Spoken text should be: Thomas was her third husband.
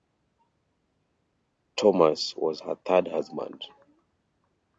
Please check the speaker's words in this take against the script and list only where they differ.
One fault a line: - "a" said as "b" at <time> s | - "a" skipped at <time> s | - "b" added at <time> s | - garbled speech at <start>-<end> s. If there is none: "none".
none